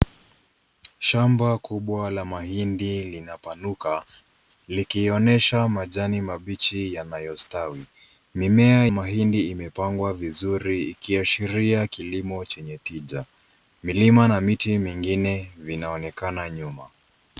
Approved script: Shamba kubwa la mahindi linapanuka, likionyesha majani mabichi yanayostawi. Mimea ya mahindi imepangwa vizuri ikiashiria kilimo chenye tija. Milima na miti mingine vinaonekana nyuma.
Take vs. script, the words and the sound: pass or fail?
fail